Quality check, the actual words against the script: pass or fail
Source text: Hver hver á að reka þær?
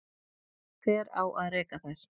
fail